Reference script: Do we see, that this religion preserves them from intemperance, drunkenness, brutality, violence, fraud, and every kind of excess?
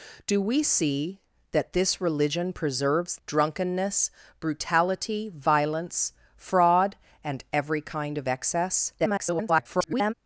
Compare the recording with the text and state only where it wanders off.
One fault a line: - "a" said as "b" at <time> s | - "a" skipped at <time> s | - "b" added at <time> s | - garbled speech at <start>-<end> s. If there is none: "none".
- "them from intemperance" skipped at 3.2 s
- garbled speech at 9.0-10.1 s